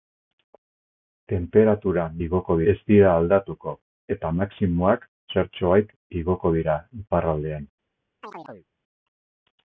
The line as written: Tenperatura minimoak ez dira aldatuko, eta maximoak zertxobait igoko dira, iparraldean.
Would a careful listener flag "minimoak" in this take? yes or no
yes